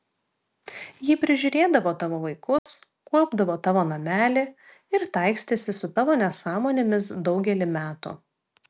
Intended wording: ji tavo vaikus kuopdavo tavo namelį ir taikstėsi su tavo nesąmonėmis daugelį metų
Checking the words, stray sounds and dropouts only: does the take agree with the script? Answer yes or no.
no